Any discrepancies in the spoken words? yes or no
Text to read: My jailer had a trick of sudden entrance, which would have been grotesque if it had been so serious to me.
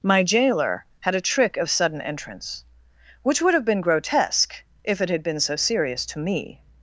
no